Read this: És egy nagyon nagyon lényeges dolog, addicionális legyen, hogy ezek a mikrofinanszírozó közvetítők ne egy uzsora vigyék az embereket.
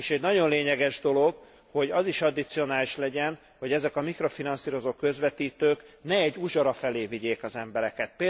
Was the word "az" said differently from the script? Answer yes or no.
no